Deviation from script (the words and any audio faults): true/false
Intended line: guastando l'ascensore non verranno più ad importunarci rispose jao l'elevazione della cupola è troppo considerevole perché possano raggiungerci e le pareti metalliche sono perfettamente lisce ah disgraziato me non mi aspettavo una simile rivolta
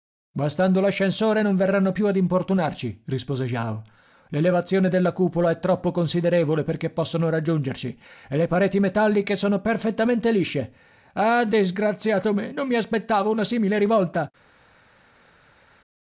false